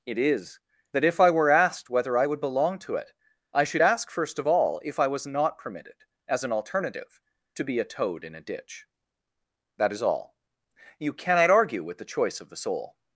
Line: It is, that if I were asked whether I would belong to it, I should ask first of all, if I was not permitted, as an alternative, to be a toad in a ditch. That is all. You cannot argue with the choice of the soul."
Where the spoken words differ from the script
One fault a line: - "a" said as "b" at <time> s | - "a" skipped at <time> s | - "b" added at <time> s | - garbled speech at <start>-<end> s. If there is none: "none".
none